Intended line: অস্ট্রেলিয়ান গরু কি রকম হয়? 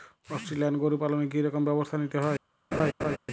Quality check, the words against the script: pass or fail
fail